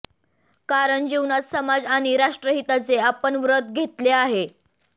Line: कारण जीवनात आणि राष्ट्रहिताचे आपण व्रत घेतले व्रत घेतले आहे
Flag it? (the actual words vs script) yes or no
yes